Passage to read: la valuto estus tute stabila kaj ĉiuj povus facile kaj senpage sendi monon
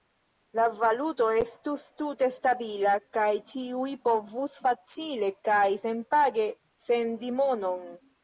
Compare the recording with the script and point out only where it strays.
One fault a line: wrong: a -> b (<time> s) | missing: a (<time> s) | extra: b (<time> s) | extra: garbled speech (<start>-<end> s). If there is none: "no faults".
no faults